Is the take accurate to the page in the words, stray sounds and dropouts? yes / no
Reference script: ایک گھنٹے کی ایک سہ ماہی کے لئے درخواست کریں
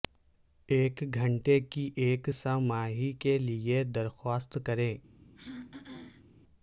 no